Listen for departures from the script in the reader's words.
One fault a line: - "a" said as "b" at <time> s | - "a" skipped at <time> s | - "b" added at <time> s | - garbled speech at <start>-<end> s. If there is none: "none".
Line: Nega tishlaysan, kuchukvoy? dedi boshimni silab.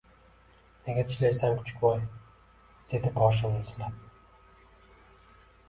none